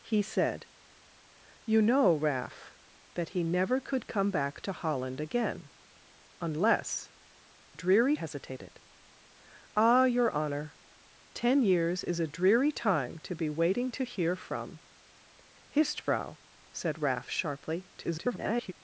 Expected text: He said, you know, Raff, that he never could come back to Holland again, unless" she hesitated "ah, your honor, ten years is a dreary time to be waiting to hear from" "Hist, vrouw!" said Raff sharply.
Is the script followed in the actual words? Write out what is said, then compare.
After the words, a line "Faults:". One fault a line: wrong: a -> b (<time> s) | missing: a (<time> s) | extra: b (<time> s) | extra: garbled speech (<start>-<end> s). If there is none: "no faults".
He said, you know, Raff, that he never could come back to Holland again, unless" dreary hesitated "ah, your honor, ten years is a dreary time to be waiting to hear from" "Hist, vrouw!" said Raff sharply. [garbled]
Faults:
wrong: she -> dreary (7.7 s)
extra: garbled speech (18.0-18.7 s)